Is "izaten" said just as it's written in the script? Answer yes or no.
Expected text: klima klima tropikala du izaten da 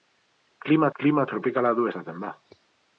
yes